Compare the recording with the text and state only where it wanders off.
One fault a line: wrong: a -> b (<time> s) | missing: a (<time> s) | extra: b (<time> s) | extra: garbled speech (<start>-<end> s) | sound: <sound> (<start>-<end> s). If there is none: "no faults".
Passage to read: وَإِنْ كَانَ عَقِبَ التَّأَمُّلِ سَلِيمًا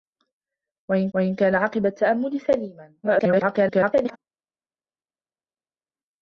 extra: وَإِنْ (1.1 s)
extra: garbled speech (3.0-4.2 s)